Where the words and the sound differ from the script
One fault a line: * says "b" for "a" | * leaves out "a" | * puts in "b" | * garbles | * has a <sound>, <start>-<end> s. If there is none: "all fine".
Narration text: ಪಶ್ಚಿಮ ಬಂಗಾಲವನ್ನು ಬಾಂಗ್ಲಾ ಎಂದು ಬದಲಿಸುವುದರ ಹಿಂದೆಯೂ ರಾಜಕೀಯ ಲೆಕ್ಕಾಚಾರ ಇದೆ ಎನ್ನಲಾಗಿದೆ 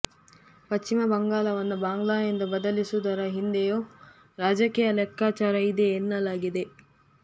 all fine